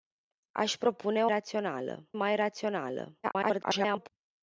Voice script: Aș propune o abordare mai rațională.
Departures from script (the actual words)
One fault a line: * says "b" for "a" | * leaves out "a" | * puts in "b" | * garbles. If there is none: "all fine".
* says "rațională" for "abordare"
* garbles